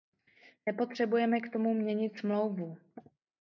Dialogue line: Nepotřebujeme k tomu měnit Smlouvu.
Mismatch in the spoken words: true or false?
false